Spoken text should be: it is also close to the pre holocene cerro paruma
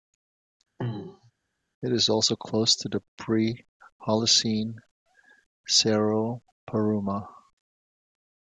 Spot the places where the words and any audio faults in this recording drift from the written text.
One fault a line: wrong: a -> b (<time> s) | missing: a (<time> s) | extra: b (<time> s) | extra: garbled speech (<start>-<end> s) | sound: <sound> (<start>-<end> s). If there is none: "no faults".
sound: throat clearing (0.8-1.3 s)